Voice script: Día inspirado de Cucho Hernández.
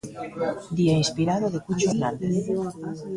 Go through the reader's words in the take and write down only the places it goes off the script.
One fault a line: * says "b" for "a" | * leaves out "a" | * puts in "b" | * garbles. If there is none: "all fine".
all fine